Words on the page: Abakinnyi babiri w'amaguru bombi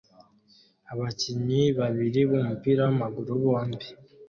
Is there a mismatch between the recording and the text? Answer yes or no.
yes